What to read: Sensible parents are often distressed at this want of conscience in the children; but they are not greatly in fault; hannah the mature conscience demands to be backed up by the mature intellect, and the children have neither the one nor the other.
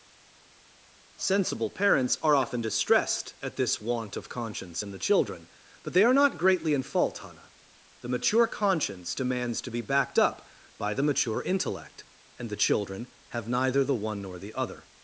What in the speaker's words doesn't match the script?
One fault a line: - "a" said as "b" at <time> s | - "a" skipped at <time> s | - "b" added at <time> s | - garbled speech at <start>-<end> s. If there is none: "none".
none